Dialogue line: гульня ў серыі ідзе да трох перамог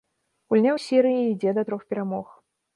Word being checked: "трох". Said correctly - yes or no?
yes